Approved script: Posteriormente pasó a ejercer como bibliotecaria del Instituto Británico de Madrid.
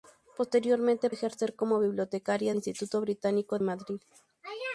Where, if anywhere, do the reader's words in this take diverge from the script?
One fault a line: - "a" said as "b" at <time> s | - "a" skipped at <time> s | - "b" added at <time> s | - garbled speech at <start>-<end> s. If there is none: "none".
- "pasó" skipped at 1.1 s
- "del" skipped at 2.5 s
- "de" skipped at 3.6 s